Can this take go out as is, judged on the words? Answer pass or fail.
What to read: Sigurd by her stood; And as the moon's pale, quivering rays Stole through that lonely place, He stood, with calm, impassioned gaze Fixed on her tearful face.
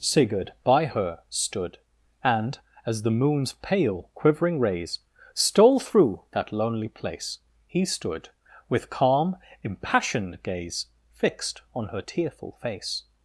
pass